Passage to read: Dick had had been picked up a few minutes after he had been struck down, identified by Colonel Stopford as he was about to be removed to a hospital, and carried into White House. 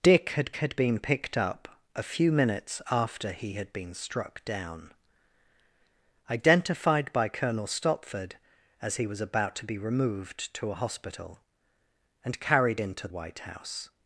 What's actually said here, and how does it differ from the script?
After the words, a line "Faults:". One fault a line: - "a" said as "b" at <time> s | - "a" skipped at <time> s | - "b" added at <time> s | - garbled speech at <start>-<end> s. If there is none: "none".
Dick had had been picked up a few minutes after he had been struck down, identified by Colonel Stopford as he was about to be removed to a hospital, and carried into White House.
Faults:
none